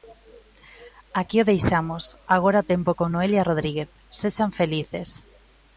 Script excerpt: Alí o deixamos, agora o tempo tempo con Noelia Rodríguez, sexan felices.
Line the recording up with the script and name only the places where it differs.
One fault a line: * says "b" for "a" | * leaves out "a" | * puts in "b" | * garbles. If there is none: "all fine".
* says "Aquí" for "Alí"
* leaves out "tempo"